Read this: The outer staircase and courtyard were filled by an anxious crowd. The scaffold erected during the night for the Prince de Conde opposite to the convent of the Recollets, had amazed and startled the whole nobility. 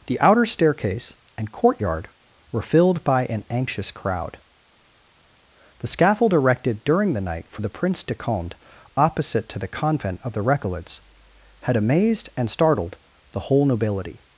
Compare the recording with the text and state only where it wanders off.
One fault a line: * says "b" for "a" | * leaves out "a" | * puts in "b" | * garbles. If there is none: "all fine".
all fine